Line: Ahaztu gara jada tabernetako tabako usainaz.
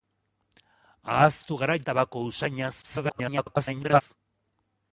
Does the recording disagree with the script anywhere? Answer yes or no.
yes